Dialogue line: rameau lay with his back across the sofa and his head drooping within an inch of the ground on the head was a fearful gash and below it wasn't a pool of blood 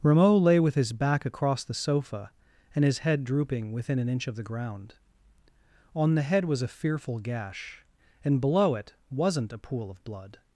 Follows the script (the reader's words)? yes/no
yes